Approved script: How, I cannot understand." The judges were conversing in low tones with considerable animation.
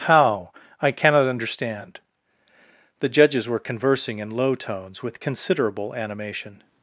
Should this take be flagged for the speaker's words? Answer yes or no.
no